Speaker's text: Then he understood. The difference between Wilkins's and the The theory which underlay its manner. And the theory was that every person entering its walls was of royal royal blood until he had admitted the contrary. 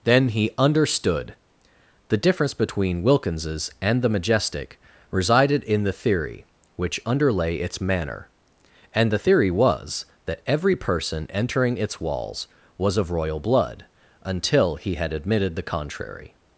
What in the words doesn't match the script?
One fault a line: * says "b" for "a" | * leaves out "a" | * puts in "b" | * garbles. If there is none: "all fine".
* puts in "Majestic resided in"
* leaves out "royal"